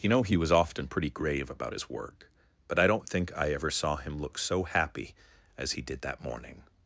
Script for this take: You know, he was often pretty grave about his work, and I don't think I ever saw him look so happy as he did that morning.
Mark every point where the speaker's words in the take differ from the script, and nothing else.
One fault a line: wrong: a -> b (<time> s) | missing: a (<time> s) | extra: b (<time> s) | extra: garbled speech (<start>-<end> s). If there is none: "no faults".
wrong: and -> but (2.7 s)